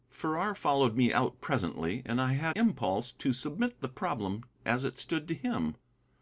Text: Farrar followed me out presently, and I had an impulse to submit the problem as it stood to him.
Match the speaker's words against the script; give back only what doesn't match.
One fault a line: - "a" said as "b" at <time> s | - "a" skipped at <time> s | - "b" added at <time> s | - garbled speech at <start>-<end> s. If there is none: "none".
- "an" skipped at 2.6 s